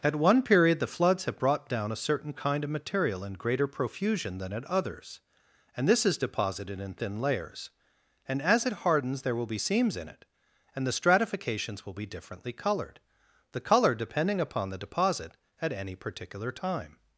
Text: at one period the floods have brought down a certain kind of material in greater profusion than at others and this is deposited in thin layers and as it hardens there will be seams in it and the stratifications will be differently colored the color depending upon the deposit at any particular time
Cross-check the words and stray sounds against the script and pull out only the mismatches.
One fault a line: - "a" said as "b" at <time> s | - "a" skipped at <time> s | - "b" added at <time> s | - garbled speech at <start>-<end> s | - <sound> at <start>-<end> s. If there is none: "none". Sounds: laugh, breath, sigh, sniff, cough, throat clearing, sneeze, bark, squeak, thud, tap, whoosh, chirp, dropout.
none